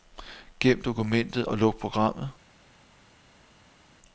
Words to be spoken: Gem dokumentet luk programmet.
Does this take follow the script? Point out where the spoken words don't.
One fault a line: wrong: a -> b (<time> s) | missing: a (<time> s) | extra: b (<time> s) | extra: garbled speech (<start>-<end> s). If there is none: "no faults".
extra: og (1.4 s)